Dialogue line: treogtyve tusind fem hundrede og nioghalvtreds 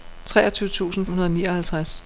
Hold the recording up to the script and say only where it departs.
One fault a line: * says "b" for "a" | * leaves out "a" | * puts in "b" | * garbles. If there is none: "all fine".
* leaves out "fem"